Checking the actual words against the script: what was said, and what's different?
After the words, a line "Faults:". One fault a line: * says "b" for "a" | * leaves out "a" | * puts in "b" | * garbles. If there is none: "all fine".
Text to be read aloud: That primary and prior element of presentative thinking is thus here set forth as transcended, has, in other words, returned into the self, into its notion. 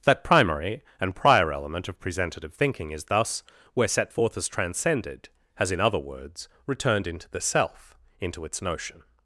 That primary and prior element of presentative thinking is thus where set forth as transcended, has, in other words, returned into the self, into its notion.
Faults:
* says "where" for "here"